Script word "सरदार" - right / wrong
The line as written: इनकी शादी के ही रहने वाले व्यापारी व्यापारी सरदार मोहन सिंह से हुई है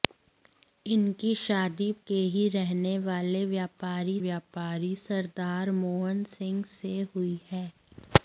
right